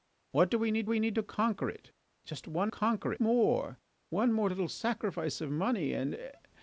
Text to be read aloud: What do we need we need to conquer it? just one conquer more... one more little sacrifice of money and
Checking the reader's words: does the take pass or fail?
pass